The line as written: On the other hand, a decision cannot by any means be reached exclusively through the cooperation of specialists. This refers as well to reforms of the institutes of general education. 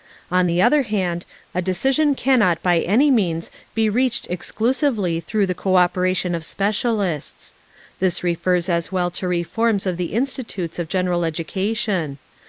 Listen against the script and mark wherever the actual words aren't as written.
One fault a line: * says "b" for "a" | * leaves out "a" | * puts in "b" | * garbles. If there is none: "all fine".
all fine